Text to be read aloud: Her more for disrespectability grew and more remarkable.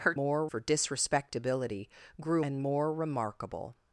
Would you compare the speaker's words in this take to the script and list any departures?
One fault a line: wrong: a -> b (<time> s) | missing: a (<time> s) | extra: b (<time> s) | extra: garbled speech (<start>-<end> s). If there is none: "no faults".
no faults